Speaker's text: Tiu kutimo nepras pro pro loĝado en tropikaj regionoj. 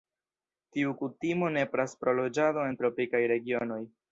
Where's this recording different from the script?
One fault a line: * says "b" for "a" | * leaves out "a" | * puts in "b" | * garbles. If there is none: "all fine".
* leaves out "pro"